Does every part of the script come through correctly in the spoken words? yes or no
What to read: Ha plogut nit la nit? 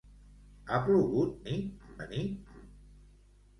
yes